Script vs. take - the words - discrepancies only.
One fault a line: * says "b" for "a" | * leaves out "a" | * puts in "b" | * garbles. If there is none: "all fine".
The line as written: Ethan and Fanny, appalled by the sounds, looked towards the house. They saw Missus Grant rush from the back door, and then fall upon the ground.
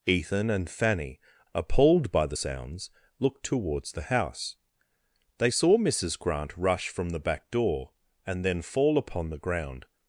all fine